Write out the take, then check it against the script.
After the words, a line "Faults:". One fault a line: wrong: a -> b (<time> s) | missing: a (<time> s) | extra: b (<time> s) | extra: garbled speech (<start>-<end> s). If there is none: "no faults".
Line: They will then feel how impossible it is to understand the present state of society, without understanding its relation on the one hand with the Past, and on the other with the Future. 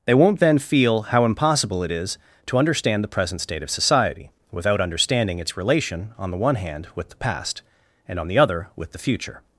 They won't then feel how impossible it is to understand the present state of society, without understanding its relation on the one hand with the Past, and on the other with the Future.
Faults:
wrong: will -> won't (0.1 s)